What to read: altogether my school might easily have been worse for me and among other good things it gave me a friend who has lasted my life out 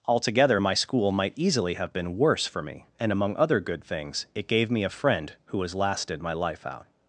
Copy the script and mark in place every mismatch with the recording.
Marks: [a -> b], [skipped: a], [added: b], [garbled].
altogether my school might easily have been worse for me and among other good things it gave me a friend who has lasted my life out